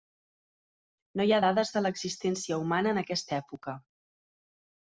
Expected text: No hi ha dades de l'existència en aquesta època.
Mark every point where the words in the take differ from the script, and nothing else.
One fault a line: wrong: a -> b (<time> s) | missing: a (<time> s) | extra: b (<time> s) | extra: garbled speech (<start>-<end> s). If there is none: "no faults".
extra: humana (2.6 s)